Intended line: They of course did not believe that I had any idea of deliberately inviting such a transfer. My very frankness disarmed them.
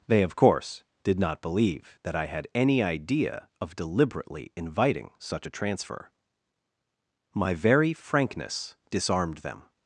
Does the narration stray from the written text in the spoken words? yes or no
no